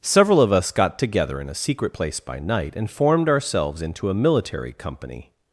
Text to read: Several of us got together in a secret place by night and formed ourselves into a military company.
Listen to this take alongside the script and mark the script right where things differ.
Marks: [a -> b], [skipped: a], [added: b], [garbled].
Several of us got together in a secret place by night and formed ourselves into a military company.